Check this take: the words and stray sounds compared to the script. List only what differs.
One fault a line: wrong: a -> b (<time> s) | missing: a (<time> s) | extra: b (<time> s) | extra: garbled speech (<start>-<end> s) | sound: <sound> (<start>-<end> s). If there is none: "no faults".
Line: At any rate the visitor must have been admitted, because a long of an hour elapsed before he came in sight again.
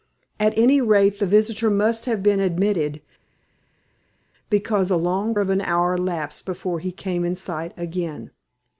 no faults